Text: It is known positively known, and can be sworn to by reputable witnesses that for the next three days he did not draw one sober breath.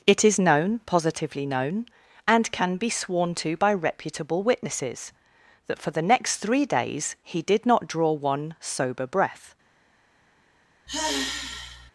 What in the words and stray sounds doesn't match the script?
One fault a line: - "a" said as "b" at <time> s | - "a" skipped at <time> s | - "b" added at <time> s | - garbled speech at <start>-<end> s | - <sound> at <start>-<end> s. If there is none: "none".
- sigh at 10.9-11.9 s